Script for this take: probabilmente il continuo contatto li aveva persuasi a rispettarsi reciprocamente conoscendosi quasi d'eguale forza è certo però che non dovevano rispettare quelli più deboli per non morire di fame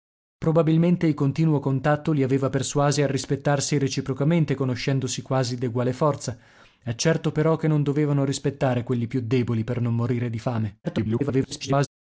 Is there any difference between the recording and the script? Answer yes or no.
yes